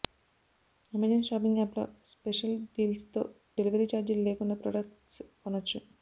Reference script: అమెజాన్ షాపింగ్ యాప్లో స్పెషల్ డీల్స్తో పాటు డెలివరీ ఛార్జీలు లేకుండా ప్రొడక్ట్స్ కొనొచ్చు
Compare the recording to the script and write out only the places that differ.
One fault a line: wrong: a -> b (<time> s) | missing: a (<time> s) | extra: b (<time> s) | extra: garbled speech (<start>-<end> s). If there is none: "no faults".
missing: పాటు (3.2 s)